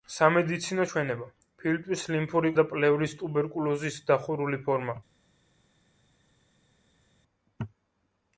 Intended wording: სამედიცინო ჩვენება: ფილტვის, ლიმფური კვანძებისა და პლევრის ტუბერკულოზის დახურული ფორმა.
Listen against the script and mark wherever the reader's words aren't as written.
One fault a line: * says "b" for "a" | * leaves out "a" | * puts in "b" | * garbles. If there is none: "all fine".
* leaves out "კვანძებისა"